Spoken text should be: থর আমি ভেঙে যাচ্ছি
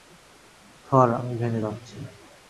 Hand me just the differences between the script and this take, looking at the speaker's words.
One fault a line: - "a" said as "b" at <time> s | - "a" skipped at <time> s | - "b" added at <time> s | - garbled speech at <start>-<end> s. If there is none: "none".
none